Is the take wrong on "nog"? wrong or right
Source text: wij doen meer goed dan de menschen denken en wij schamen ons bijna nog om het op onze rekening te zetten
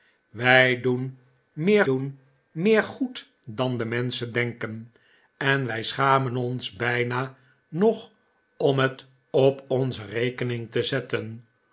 right